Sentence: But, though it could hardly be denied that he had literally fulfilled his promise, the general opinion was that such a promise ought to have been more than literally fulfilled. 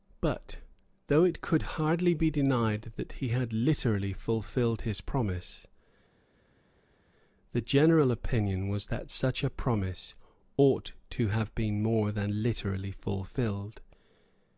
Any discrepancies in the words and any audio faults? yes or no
no